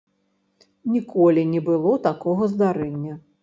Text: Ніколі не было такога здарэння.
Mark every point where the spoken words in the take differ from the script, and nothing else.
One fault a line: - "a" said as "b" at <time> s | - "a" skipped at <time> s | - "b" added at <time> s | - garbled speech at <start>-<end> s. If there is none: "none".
none